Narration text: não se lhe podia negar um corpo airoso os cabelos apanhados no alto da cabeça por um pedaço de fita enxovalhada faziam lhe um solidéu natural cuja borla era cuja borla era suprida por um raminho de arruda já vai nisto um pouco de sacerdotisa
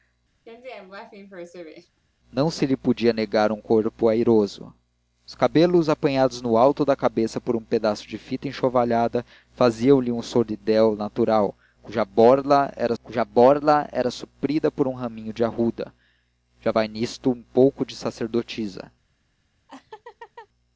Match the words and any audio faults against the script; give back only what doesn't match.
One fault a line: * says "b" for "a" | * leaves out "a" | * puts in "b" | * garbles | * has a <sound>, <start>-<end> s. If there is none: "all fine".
* has a laugh, 0.5-2.0 s
* has a laugh, 19.7-20.5 s